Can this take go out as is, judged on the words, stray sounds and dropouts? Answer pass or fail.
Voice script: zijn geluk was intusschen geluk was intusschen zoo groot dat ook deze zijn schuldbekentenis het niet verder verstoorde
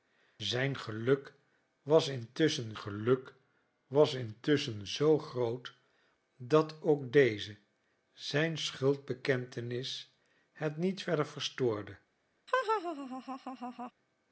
fail